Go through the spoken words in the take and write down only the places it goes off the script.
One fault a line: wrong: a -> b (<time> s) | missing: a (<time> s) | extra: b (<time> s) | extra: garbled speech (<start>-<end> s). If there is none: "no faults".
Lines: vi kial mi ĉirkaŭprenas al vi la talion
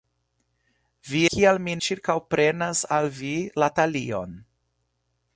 no faults